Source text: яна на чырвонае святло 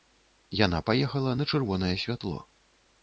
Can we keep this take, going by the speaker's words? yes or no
no